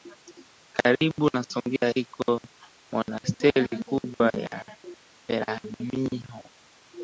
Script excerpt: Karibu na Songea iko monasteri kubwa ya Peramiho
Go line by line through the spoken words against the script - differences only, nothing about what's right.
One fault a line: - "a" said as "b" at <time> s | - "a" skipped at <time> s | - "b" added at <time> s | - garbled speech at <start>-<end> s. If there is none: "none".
none